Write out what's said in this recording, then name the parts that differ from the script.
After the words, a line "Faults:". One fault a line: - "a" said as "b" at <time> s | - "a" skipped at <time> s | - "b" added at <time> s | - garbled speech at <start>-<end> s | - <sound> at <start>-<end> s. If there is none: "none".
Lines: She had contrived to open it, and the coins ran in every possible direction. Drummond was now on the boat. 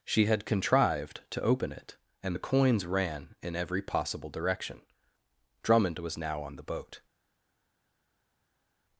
She had contrived to open it, and the coins ran in every possible direction. Drummond was now on the boat.
Faults:
none